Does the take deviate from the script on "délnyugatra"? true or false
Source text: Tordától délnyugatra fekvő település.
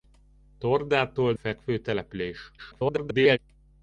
true